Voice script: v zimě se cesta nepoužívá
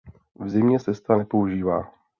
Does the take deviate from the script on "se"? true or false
true